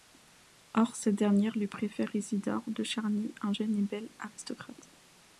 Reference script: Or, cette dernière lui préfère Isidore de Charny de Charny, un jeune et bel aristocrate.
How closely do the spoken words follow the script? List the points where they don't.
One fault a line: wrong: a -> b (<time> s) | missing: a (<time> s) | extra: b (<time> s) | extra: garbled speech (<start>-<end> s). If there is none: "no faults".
missing: de Charny (3.4 s)